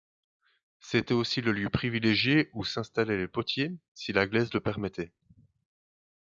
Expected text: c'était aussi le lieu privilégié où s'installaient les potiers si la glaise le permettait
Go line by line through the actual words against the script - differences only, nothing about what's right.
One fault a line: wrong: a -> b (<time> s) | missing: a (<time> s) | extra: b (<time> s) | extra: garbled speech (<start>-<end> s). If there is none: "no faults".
no faults